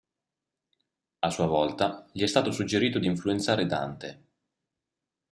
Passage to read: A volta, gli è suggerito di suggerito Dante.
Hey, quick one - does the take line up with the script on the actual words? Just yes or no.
no